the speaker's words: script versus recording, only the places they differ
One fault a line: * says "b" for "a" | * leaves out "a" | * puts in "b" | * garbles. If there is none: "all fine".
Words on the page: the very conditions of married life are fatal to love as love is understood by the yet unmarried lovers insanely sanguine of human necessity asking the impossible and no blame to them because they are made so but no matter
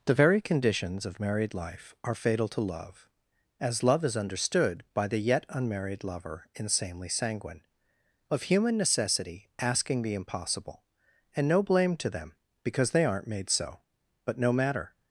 * says "lover" for "lovers"
* says "aren't" for "are"